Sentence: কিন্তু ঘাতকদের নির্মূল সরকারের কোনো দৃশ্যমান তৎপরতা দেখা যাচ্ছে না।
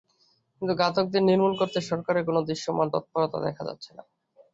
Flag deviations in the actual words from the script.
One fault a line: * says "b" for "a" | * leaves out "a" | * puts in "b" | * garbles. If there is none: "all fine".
* puts in "করতে"